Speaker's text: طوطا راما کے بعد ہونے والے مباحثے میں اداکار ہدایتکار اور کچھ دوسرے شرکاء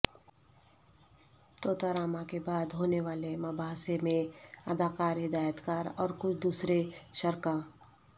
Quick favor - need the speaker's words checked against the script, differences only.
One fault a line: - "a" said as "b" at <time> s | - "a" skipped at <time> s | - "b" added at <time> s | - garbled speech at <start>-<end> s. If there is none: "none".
none